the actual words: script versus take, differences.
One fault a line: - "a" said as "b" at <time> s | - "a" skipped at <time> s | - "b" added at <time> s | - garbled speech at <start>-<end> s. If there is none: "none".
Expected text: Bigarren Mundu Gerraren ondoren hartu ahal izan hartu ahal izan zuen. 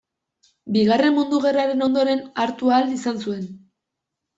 - "hartu ahal izan" skipped at 3.3 s